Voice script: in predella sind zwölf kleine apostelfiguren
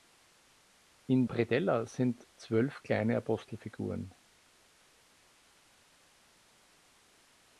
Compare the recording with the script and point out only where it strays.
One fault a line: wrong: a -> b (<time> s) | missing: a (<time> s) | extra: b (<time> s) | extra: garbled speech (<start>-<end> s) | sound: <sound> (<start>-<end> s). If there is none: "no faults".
no faults